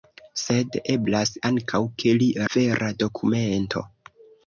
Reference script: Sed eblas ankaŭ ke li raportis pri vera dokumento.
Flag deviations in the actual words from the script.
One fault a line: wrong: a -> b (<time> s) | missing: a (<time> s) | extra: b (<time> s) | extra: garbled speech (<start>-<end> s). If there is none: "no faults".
missing: raportis pri (2.3 s)